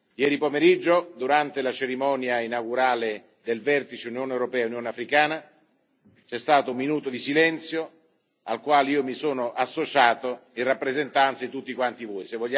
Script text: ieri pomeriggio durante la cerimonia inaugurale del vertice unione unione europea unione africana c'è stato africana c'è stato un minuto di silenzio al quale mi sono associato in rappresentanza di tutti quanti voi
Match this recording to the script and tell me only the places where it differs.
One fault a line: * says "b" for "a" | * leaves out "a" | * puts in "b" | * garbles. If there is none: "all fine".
* leaves out "unione"
* leaves out "africana c'è stato"
* puts in "io"